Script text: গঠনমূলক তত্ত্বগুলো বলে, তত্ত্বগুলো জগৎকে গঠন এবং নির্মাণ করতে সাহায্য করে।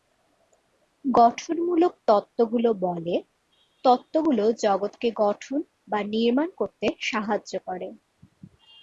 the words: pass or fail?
fail